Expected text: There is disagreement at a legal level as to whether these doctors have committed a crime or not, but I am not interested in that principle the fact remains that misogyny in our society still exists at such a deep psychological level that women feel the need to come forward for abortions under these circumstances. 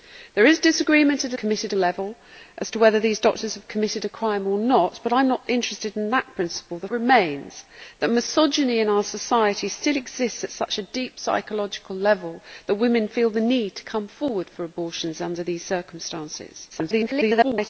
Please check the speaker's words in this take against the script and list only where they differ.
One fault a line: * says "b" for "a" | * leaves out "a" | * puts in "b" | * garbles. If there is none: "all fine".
* says "committed" for "legal"
* leaves out "fact"
* garbles